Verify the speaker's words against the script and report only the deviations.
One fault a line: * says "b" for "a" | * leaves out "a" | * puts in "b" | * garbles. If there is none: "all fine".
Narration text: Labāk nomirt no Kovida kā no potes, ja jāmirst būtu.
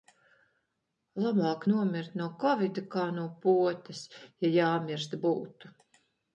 all fine